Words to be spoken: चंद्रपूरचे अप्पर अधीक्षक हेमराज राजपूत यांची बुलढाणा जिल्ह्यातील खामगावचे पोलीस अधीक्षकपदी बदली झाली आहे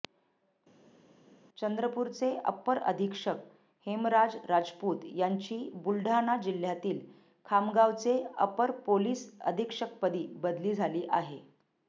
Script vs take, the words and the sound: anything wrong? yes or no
yes